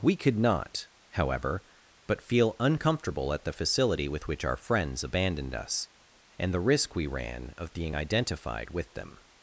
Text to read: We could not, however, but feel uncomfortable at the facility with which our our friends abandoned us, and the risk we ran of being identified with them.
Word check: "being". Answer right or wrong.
right